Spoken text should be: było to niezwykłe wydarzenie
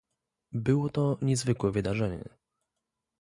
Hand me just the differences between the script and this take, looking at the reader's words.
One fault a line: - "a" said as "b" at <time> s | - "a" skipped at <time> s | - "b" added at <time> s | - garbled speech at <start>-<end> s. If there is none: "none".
none